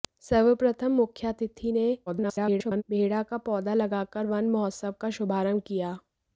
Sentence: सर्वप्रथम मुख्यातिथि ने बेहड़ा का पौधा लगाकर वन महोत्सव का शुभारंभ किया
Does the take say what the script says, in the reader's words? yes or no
no